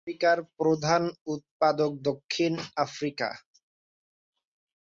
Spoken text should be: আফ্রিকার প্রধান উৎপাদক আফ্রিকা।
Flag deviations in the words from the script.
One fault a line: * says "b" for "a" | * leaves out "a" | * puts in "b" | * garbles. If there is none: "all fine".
* puts in "দক্ষিণ"